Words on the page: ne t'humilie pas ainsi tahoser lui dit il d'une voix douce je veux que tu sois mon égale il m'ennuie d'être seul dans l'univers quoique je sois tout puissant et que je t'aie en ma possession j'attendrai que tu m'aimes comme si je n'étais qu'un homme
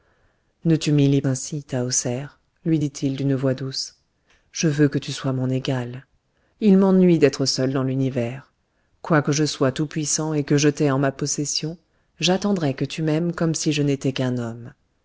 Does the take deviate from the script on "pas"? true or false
true